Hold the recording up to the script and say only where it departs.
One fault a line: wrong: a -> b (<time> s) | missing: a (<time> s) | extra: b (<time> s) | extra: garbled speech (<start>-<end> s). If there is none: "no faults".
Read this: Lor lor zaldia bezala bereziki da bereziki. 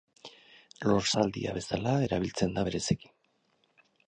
missing: lor (1.1 s)
wrong: bereziki -> erabiltzen (2.1 s)